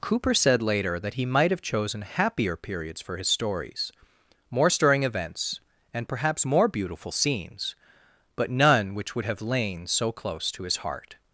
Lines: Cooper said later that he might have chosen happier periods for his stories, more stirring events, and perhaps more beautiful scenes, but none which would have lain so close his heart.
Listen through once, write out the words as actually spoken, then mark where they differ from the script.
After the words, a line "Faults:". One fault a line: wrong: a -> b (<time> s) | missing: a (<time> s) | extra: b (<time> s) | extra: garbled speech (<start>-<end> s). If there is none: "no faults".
Cooper said later that he might have chosen happier periods for his stories, more stirring events, and perhaps more beautiful scenes, but none which would have lain so close to his heart.
Faults:
extra: to (10.5 s)